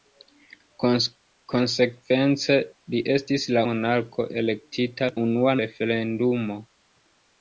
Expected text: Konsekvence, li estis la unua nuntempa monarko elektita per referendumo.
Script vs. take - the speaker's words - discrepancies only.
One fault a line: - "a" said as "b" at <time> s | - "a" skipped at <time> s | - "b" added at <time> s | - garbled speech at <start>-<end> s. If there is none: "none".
- "unua nuntempa" skipped at 3.6 s
- "per" said as "unua" at 5.2 s